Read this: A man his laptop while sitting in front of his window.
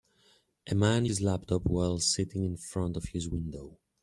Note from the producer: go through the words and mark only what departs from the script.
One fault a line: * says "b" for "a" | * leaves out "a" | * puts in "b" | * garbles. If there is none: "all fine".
all fine